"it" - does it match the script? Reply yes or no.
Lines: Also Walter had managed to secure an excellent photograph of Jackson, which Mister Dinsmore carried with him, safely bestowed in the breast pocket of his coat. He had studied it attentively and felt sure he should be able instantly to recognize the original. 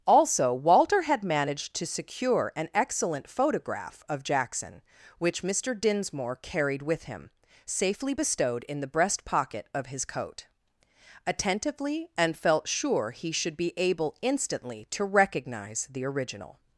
no